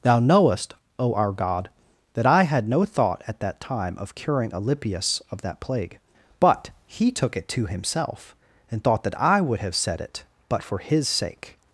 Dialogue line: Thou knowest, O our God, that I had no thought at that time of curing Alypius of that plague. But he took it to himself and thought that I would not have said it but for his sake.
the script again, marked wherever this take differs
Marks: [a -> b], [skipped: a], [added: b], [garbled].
Thou knowest, O our God, that I had no thought at that time of curing Alypius of that plague. But he took it to himself and thought that I would [skipped: not] have said it but for his sake.